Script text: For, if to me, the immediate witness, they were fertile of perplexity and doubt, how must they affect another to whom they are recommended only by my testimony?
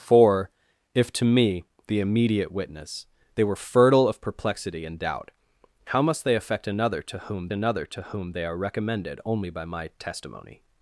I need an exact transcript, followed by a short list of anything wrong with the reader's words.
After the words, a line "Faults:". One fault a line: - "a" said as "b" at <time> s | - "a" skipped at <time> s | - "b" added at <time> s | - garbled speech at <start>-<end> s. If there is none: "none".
For, if to me, the immediate witness, they were fertile of perplexity and doubt, how must they affect another to whom another to whom they are recommended only by my testimony?
Faults:
- "another to whom" added at 7.5 s